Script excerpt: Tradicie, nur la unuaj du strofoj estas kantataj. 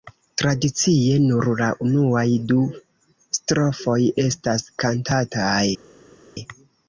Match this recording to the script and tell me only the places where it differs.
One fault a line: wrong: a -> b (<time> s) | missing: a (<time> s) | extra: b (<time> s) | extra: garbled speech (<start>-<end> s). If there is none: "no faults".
no faults